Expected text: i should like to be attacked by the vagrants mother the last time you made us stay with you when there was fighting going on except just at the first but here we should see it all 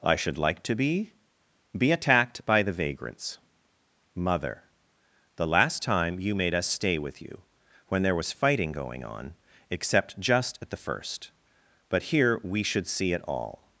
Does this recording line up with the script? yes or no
no